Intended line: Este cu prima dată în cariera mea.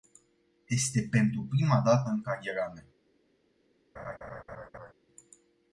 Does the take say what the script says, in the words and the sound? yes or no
no